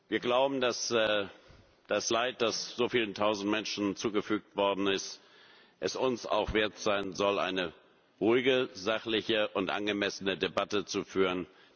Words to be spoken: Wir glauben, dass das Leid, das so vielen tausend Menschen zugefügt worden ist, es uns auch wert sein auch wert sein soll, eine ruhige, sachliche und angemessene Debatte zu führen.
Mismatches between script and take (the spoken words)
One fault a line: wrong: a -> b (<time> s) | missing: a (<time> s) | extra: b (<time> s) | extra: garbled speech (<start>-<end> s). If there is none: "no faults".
missing: auch wert sein (7.1 s)